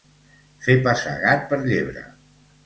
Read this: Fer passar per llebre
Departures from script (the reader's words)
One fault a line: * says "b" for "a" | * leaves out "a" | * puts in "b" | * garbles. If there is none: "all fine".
* puts in "gat"